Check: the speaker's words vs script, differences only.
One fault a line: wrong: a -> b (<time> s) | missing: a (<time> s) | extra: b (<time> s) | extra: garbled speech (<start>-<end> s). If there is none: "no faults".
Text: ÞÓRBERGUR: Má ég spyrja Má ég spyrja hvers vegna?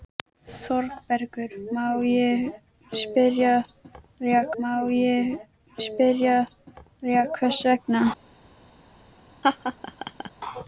no faults